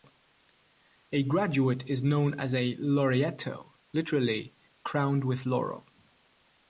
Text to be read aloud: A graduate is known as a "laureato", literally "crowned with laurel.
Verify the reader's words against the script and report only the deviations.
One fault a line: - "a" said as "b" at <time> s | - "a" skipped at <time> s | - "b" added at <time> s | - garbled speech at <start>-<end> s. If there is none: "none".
none